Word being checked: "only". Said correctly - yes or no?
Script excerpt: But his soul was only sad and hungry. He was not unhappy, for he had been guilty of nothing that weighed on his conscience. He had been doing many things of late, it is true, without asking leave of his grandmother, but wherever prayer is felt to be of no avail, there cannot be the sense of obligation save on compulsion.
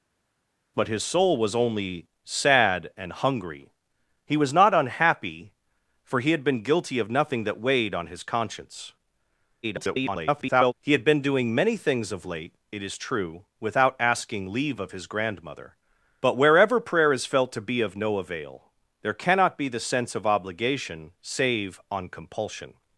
yes